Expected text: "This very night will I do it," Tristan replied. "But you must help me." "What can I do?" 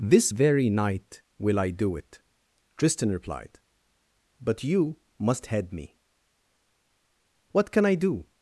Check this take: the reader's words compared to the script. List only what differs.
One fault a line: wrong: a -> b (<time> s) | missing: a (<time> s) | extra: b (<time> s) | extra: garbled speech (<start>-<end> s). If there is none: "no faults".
wrong: help -> head (5.5 s)